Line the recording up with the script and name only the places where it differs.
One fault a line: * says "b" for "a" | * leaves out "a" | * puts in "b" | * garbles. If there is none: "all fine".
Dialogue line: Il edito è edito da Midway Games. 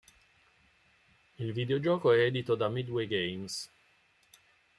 * says "videogioco" for "edito"